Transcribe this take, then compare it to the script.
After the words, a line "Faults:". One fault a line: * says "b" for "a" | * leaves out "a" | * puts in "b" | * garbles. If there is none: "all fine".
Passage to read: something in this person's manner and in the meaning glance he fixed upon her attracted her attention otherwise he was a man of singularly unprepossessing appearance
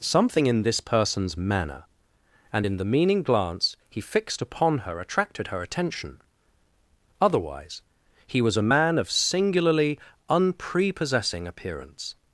something in this person's manner and in the meaning glance he fixed upon her attracted her attention otherwise he was a man of singularly unprepossessing appearance
Faults:
all fine